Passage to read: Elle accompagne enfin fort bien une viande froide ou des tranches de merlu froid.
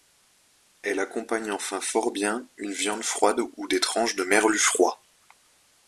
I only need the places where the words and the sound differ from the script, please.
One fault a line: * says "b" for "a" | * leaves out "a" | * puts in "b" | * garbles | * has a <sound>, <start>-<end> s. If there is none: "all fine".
all fine